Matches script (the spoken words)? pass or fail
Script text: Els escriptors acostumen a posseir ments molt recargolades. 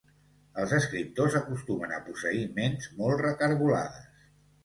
pass